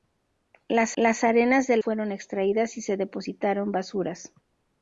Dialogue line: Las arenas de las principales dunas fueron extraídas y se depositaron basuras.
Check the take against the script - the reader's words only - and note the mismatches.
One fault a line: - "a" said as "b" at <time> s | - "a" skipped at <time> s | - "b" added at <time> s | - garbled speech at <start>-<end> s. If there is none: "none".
- "las" added at 0.9 s
- "las principales dunas" skipped at 1.8 s